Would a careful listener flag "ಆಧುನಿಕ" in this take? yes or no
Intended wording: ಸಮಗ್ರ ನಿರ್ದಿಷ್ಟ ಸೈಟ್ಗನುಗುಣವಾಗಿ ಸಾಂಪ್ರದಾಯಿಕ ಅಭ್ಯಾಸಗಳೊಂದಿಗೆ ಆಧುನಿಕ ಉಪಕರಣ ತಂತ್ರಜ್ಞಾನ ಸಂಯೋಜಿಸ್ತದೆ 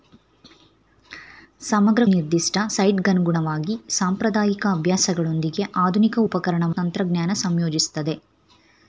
no